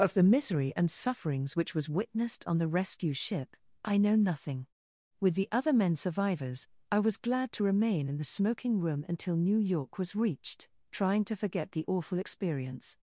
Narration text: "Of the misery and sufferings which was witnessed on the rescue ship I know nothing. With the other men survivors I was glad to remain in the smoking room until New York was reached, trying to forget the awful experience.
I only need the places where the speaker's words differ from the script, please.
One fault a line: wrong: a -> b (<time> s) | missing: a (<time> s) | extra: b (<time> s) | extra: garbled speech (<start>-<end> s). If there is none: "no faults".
no faults